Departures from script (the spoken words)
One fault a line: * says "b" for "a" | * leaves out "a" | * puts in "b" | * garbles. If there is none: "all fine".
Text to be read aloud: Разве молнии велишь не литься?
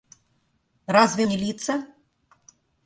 * leaves out "молнии велишь"